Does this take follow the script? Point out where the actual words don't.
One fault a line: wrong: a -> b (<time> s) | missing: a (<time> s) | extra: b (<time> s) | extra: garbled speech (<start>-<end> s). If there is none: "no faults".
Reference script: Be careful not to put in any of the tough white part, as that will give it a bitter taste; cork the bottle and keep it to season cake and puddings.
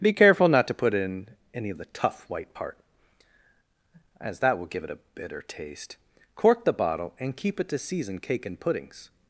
no faults